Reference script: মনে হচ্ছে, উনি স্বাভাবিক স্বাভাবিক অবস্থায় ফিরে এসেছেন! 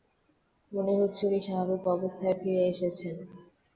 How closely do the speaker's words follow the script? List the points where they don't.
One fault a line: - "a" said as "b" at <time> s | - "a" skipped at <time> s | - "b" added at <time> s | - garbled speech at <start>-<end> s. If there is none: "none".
- "স্বাভাবিক" skipped at 1.8 s